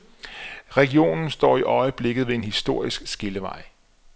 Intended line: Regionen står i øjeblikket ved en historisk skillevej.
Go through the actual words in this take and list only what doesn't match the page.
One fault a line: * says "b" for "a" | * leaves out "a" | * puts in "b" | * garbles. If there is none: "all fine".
all fine